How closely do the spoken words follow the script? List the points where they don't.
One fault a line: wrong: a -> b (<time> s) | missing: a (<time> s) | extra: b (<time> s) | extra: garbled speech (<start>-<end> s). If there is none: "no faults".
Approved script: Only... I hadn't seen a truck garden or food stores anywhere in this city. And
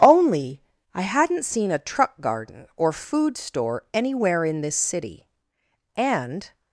wrong: stores -> store (3.4 s)